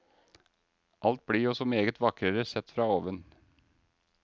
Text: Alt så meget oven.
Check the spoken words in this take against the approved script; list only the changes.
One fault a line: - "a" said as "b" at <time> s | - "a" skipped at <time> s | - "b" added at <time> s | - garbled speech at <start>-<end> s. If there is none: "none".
- "blir jo" added at 1.2 s
- "vakrere sett fra" added at 2.0 s